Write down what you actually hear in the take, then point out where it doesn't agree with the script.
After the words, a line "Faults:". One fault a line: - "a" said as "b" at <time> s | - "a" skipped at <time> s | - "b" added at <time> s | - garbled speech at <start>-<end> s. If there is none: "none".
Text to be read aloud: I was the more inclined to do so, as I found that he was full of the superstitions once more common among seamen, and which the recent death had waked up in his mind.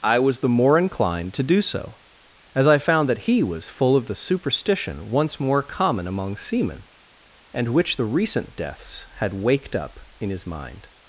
I was the more inclined to do so, as I found that he was full of the superstition once more common among seamen, and which the recent deaths had waked up in his mind.
Faults:
- "superstitions" said as "superstition" at 4.1 s
- "death" said as "deaths" at 8.6 s